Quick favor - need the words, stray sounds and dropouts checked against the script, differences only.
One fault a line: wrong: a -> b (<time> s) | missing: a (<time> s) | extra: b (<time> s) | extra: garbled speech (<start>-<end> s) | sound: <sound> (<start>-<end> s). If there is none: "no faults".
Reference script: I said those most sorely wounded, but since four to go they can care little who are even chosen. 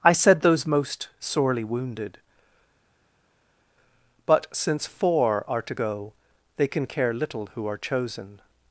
extra: are (5.5 s)
missing: even (7.8 s)